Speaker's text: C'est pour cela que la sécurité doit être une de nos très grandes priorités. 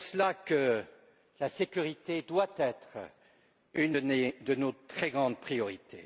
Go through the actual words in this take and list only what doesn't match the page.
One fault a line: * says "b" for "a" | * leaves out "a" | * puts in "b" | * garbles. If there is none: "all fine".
all fine